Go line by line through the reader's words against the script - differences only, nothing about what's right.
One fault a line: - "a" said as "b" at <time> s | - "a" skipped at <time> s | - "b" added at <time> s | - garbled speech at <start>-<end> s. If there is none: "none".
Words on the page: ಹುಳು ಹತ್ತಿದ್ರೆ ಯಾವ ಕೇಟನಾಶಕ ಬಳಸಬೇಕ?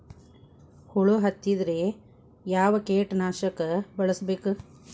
none